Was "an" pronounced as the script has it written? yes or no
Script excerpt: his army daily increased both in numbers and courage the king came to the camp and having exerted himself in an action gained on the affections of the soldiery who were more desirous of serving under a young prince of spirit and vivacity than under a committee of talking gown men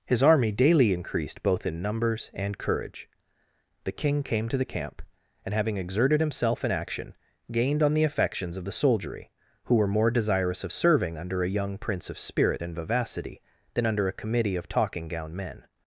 no